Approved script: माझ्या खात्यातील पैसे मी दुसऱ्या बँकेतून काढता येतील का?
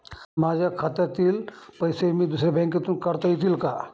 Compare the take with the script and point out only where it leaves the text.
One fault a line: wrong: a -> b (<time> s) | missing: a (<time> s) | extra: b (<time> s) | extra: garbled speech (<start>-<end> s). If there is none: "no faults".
no faults